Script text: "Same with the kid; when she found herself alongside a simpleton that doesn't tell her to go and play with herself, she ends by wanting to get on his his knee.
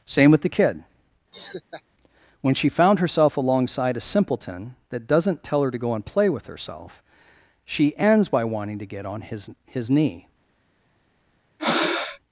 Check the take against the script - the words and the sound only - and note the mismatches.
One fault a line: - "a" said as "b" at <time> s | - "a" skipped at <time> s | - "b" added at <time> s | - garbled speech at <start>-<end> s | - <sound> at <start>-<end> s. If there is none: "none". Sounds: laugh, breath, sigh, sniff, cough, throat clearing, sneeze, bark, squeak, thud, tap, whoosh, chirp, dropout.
- laugh at 1.3-1.8 s
- breath at 11.6-12.2 s